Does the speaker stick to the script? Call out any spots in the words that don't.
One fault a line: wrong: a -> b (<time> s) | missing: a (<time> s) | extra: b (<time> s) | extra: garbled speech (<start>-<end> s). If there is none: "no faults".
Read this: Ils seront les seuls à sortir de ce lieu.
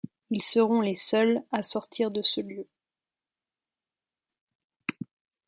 no faults